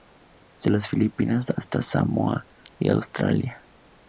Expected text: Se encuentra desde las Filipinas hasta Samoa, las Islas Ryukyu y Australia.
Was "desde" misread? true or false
true